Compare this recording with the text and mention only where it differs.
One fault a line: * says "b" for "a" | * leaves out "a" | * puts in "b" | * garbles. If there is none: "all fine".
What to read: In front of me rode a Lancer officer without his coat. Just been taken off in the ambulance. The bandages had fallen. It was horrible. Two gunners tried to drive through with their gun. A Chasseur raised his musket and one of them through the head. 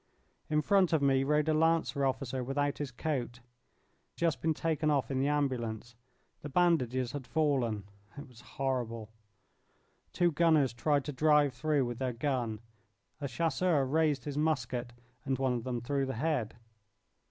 all fine